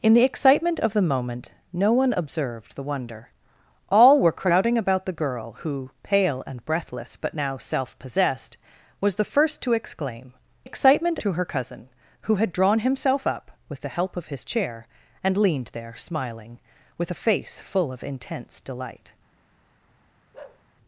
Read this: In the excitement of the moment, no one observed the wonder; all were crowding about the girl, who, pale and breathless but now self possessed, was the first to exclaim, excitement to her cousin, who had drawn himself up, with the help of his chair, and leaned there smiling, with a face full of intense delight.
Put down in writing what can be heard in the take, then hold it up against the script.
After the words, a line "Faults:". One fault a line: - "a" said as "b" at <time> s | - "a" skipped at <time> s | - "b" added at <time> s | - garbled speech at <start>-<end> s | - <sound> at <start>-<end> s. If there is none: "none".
In the excitement of the moment, no one observed the wonder; all were crowding about the girl, who, pale and breathless but now self possessed, was the first to exclaim, excitement to her cousin, who had drawn himself up, with the help of his chair, and leaned there smiling, with a face full of intense delight.
Faults:
- bark at 20.3-20.6 s